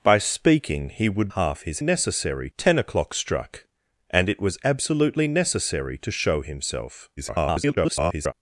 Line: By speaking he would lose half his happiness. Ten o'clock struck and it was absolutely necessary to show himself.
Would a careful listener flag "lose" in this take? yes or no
yes